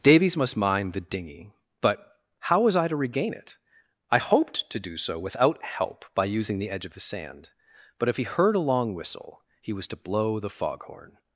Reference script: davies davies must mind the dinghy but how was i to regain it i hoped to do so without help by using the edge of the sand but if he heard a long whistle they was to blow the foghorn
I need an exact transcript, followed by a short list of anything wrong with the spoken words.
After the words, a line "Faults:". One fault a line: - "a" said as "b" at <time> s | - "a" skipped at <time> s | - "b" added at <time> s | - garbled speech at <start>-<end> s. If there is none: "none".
davies must mind the dinghy but how was i to regain it i hoped to do so without help by using the edge of the sand but if he heard a long whistle he was to blow the foghorn
Faults:
- "davies" skipped at 0.3 s
- "they" said as "he" at 9.6 s